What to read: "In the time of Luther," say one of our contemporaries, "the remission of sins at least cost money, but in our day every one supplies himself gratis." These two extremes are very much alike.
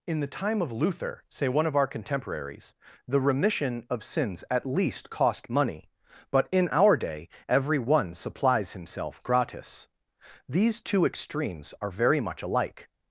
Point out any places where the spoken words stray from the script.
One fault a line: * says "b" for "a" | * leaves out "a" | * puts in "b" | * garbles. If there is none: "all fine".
all fine